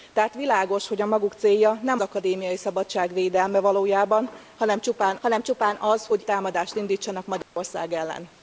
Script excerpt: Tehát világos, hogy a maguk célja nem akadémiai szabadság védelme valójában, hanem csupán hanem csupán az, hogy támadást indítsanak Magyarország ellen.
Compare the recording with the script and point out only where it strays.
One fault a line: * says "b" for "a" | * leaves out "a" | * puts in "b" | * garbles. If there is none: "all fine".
all fine